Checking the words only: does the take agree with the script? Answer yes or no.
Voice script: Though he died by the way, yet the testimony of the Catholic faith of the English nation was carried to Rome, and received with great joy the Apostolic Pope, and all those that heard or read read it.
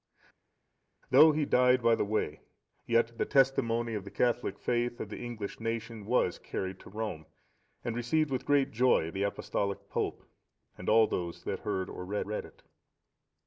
yes